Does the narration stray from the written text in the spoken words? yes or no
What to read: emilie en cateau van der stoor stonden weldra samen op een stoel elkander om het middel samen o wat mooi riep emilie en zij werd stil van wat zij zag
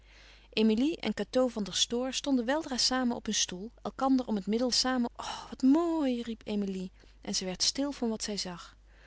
no